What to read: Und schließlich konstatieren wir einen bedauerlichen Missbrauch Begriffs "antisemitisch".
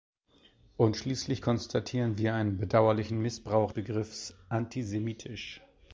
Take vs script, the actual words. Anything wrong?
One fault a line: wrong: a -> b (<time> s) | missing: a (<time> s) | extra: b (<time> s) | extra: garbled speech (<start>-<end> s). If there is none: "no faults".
no faults